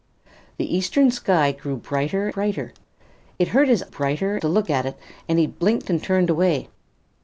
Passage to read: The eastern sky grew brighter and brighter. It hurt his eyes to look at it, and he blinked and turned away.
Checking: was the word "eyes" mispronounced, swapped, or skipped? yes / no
yes